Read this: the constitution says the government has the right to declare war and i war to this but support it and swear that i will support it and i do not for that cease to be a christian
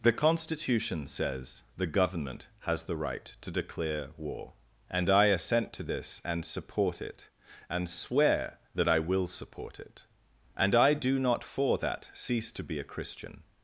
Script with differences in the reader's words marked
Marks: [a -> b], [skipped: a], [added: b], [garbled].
the constitution says the government has the right to declare war and i [war -> assent] to this [but -> and] support it and swear that i will support it and i do not for that cease to be a christian